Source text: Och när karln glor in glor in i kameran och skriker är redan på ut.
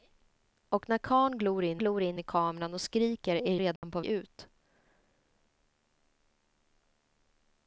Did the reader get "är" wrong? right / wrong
right